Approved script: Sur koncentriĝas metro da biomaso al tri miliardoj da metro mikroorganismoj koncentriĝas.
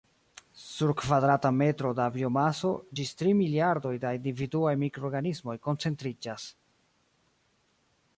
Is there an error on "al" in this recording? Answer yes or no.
yes